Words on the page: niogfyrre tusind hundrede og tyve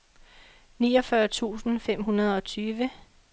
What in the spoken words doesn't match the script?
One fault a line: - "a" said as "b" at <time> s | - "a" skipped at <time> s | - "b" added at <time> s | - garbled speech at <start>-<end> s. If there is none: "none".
- "fem" added at 1.8 s